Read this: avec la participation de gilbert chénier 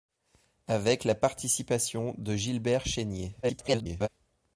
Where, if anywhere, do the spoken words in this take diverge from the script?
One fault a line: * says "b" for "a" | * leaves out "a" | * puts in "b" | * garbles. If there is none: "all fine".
* garbles